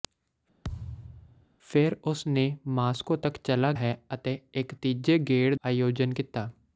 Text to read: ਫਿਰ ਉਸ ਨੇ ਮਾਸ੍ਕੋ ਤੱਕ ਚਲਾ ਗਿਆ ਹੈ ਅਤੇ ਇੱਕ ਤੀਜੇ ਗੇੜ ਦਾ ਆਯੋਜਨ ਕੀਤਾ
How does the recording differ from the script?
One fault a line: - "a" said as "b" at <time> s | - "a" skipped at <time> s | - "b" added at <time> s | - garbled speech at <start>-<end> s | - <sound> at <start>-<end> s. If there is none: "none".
- thud at 0.6-1.5 s
- "ਗਿਆ" skipped at 3.7 s
- "ਦਾ" skipped at 5.5 s